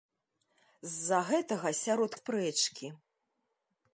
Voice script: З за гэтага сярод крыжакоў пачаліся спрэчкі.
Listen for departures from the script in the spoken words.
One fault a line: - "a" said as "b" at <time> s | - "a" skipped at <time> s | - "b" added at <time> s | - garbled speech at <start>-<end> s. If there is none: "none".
- "крыжакоў пачаліся" skipped at 2.1 s